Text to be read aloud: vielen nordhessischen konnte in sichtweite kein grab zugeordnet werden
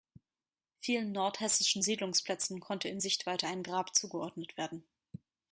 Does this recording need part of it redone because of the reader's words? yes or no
yes